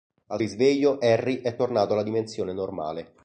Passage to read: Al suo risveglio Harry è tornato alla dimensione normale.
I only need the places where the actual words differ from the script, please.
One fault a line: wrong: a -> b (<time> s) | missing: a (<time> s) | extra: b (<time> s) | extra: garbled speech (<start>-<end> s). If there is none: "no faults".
missing: suo (0.4 s)